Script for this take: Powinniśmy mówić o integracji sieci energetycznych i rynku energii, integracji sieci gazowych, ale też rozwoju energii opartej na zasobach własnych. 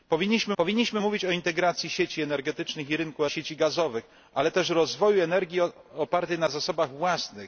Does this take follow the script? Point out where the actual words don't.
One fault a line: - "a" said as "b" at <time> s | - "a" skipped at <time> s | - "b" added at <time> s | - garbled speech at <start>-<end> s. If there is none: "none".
- "powinniśmy" added at 0.6 s
- "energii integracji" skipped at 3.3 s